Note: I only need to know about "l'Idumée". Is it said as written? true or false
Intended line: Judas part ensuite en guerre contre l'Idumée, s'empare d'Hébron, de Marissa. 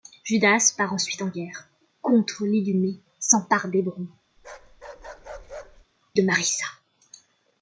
true